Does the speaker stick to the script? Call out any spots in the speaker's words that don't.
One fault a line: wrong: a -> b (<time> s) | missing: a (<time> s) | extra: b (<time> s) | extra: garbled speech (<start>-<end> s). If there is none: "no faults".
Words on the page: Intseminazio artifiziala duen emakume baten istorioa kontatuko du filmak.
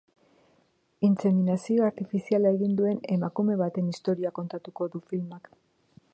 extra: egin (2.6 s)